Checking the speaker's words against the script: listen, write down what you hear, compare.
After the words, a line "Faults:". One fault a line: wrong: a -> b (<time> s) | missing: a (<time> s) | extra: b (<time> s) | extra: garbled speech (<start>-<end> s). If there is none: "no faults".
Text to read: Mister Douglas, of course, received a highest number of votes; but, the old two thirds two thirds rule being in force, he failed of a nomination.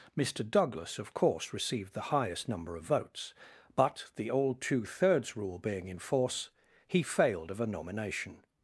Mister Douglas, of course, received the highest number of votes; but, the old two thirds rule being in force, he failed of a nomination.
Faults:
wrong: a -> the (1.9 s)
missing: two thirds (5.4 s)